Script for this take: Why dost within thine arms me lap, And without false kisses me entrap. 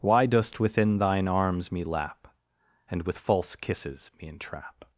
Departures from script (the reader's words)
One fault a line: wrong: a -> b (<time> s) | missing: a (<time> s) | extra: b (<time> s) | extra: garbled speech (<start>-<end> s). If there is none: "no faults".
wrong: without -> with (3.0 s)